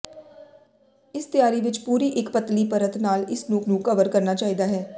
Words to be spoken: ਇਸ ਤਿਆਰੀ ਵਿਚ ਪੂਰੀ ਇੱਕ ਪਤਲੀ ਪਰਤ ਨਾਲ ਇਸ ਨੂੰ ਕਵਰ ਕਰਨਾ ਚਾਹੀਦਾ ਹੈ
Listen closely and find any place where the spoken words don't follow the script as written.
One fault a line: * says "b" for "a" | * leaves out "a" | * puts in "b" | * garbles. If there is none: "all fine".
* puts in "ਨੂੰ"